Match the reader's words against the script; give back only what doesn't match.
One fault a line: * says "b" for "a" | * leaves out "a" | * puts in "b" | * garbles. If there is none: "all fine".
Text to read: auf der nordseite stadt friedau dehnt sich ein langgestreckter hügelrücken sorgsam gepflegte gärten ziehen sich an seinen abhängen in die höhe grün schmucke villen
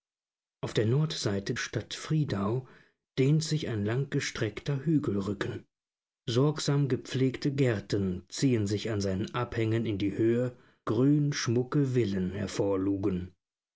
all fine